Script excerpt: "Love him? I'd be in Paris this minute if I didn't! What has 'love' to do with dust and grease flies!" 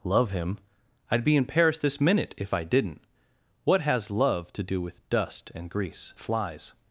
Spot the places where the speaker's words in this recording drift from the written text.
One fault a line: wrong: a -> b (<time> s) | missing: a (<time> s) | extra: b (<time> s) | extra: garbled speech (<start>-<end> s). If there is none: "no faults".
no faults